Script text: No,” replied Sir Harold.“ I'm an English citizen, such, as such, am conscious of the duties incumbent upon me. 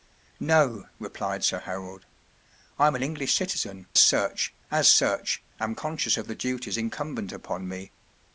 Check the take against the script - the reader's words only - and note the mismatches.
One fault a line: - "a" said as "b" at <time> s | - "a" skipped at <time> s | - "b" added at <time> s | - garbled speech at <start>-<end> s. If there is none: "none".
none